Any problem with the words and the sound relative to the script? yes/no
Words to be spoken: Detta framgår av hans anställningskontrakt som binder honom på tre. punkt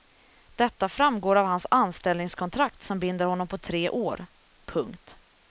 yes